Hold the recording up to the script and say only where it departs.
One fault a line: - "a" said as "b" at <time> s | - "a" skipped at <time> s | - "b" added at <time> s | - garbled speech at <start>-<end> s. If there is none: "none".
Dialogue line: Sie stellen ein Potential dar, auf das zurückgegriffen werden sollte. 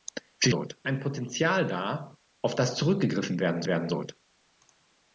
- "stellen" said as "sollte" at 0.5 s
- "werden" added at 3.6 s